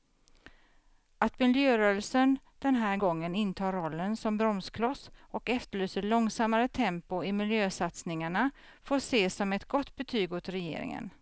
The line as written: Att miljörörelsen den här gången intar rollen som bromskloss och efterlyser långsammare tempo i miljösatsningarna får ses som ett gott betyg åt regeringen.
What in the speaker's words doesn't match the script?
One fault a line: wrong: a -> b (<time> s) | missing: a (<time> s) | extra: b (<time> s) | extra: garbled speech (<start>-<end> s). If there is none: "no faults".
no faults